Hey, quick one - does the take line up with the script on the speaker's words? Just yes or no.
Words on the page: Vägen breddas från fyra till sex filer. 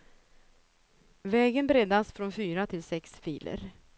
yes